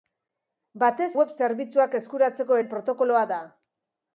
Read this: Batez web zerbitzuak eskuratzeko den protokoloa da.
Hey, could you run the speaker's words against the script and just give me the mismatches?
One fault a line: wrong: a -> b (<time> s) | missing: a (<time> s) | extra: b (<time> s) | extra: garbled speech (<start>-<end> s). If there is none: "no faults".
no faults